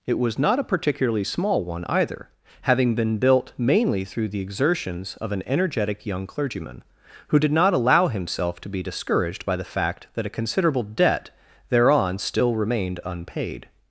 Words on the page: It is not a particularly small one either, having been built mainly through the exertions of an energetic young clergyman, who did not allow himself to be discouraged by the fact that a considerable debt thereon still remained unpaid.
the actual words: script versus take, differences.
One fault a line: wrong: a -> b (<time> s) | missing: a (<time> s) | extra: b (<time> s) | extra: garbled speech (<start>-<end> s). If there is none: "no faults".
wrong: is -> was (0.2 s)